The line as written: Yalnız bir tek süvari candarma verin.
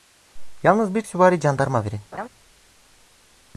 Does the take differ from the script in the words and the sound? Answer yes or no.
yes